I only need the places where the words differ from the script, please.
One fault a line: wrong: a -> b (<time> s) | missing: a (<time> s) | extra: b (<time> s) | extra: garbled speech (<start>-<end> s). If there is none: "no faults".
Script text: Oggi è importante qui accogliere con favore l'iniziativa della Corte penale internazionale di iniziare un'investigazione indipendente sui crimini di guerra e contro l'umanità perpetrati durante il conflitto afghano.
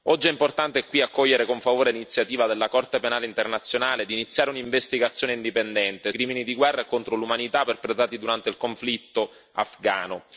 missing: sui (6.1 s)